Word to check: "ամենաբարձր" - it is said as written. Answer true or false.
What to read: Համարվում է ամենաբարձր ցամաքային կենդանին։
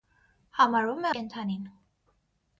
false